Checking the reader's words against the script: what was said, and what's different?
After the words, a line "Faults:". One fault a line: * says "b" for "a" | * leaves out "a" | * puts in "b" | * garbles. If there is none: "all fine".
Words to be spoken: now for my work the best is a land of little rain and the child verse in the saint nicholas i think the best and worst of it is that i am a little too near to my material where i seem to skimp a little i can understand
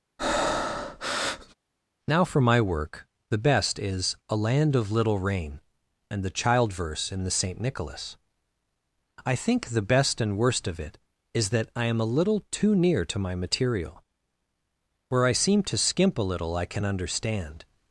now for my work the best is a land of little rain and the child verse in the saint nicholas i think the best and worst of it is that i am a little too near to my material where i seem to skimp a little i can understand
Faults:
all fine